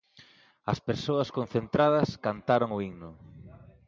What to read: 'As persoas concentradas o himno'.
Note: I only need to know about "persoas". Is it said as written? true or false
true